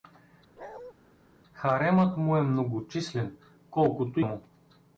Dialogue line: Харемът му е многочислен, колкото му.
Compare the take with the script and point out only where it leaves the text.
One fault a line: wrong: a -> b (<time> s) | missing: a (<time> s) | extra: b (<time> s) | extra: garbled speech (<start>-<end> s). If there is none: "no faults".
no faults